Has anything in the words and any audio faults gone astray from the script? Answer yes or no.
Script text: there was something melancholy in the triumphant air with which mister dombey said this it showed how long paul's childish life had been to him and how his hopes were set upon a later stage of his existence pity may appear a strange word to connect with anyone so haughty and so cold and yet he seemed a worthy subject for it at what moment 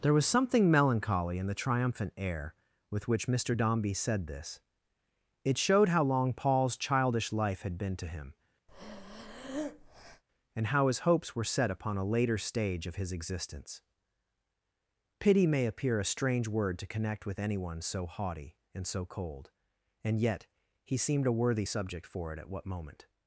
yes